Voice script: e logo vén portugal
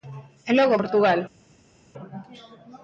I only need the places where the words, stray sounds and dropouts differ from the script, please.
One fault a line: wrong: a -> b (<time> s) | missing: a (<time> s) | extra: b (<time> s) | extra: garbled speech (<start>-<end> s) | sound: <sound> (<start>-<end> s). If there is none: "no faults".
missing: vén (0.8 s)